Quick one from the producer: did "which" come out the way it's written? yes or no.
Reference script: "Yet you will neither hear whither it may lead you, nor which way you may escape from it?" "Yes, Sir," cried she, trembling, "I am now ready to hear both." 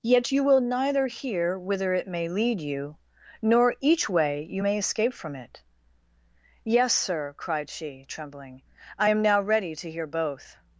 no